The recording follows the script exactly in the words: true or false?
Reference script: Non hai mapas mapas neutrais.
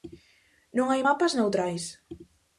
false